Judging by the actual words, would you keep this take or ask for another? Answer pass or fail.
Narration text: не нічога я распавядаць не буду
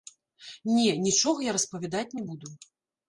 pass